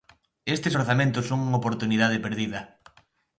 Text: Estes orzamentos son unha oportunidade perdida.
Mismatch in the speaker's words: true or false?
false